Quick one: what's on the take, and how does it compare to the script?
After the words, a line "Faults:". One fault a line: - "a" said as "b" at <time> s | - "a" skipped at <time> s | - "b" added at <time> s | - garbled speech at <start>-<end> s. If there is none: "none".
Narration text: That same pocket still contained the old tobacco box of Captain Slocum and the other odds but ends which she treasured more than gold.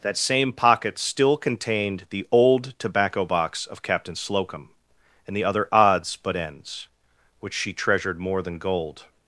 That same pocket still contained the old tobacco box of Captain Slocum and the other odds but ends which she treasured more than gold.
Faults:
none